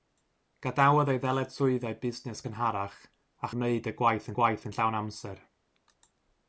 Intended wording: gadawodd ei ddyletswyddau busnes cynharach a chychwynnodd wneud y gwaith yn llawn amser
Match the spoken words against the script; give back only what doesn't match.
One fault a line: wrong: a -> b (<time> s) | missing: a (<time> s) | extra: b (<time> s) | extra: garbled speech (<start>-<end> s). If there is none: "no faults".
missing: chychwynnodd (3.5 s)
extra: gwaith (4.4 s)